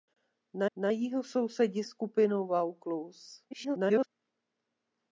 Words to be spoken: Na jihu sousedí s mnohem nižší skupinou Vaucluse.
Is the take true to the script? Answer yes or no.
no